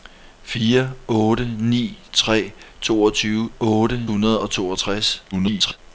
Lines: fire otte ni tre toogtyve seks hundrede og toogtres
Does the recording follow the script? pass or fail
fail